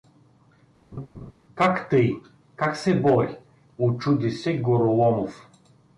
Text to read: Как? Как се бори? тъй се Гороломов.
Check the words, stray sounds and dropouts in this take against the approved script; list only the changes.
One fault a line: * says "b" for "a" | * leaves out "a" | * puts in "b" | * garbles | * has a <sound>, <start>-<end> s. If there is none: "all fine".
* has a laugh, 0.9-1.3 s
* puts in "тъй"
* says "учуди" for "тъй"